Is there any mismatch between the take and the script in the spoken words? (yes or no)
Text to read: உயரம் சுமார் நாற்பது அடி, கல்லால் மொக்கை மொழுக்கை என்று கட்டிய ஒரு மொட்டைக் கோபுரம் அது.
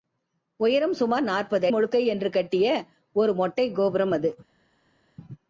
yes